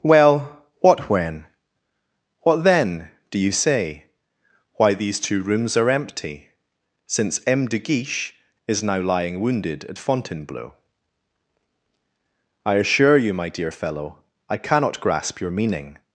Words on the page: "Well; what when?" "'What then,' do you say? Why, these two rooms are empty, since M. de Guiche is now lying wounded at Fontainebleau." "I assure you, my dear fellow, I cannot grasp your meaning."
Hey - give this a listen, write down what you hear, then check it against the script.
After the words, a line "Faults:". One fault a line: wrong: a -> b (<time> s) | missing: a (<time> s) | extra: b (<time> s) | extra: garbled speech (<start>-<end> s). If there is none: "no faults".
"Well; what when?" "'What then,' do you say? Why, these two rooms are empty, since M. de Guiche is now lying wounded at Fontainebleau." "I assure you, my dear fellow, I cannot grasp your meaning."
Faults:
no faults